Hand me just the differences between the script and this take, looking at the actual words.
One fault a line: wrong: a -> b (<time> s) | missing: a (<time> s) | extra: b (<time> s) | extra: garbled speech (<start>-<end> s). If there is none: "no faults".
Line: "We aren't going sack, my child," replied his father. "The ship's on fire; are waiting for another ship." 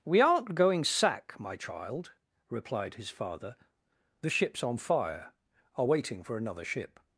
no faults